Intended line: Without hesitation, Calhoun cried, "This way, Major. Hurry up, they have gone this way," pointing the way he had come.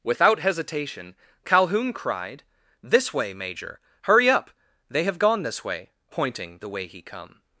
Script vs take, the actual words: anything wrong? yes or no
yes